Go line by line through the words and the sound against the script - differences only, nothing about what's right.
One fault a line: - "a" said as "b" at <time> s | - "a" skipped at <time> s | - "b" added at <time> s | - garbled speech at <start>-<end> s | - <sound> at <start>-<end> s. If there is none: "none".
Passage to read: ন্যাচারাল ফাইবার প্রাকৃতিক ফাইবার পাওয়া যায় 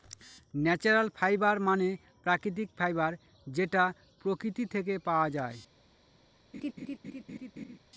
- "মানে" added at 1.6 s
- "যেটা প্রকৃতি থেকে" added at 3.5 s
- laugh at 6.5-7.8 s